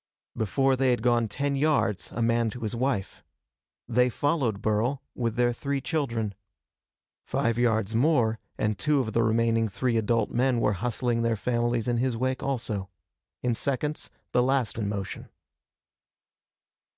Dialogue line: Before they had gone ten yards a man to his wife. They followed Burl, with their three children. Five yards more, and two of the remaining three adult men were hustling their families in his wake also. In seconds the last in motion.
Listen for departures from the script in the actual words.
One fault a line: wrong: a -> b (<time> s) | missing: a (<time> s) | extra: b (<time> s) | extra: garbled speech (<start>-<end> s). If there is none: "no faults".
no faults